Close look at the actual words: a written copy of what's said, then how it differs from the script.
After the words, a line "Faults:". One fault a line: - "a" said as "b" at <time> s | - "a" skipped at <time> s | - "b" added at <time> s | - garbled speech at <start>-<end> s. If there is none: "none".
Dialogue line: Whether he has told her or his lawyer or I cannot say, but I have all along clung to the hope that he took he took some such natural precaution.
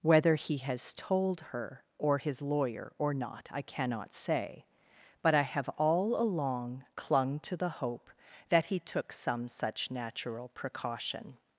Whether he has told her or his lawyer or not I cannot say, but I have all along clung to the hope that he took some such natural precaution.
Faults:
- "not" added at 3.1 s
- "he took" skipped at 9.1 s